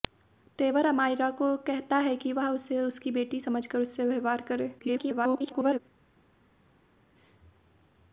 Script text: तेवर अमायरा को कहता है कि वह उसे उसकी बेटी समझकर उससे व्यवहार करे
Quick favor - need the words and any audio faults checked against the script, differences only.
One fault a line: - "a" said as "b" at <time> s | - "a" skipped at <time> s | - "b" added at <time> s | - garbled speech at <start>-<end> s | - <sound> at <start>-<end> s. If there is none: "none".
- garbled speech at 4.8-5.8 s